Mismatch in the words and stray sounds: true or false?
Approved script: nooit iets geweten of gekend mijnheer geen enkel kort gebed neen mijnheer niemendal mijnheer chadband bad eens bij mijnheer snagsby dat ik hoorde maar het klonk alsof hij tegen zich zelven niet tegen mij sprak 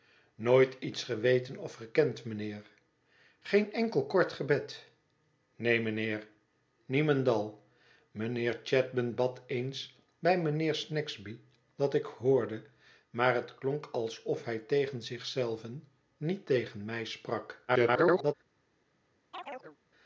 true